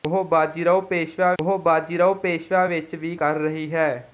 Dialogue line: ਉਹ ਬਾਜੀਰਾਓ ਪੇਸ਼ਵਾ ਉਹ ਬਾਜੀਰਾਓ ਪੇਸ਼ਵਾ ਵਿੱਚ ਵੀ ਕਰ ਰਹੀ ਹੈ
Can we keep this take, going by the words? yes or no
yes